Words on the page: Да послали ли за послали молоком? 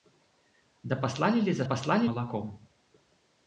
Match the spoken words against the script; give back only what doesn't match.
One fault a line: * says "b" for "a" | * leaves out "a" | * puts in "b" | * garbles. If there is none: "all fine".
all fine